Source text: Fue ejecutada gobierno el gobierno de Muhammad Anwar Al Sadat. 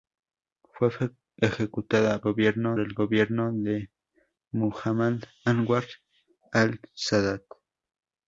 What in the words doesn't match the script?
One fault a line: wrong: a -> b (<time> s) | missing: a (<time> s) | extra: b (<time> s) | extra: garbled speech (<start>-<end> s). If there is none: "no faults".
no faults